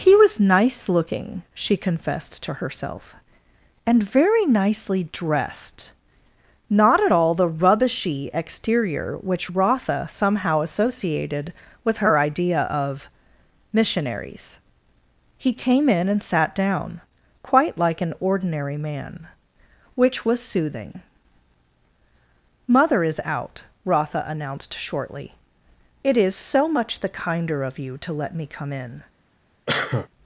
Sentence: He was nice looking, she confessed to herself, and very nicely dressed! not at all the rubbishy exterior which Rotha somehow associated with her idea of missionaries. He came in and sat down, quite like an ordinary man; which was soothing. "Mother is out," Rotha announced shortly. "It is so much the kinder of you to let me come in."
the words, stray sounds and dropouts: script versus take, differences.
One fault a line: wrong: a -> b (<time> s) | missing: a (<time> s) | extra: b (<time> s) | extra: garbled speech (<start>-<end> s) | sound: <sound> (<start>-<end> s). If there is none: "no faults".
sound: cough (29.7-30.1 s)